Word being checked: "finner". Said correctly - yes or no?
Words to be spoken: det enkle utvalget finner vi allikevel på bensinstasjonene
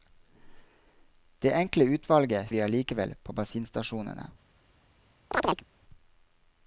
no